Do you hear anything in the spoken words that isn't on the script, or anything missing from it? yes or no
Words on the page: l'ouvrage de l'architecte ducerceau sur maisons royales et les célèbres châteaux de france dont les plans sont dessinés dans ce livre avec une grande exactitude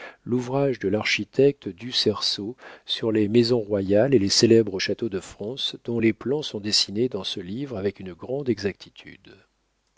yes